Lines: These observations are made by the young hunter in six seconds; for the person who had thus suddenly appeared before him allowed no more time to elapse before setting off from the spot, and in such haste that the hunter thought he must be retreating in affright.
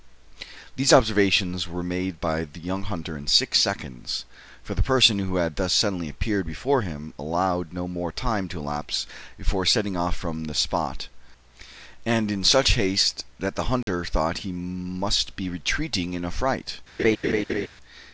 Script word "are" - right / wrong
wrong